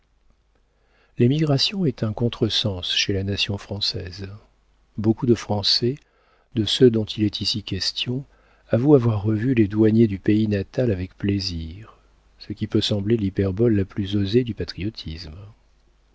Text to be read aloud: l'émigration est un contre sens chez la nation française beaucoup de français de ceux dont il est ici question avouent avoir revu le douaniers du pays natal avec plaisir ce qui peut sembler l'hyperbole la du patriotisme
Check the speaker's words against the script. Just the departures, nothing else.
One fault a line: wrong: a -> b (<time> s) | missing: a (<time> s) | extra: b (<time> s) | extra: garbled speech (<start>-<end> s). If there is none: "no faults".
wrong: le -> les (9.5 s)
extra: plus osée (13.8 s)